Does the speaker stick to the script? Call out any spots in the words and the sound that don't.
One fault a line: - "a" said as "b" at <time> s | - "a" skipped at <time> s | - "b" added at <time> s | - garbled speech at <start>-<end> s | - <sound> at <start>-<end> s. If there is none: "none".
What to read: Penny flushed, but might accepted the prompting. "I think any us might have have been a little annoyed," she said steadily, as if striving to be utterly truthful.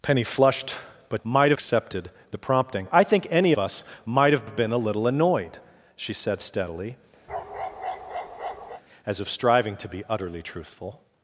- bark at 7.3-8.8 s